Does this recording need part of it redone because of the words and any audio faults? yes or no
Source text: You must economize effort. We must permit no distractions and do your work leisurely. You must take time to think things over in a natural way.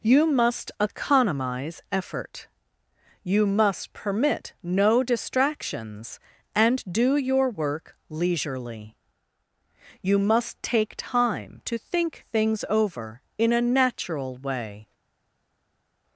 yes